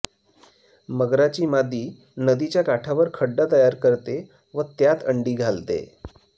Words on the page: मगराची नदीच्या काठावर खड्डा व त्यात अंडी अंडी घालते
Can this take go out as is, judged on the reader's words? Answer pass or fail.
fail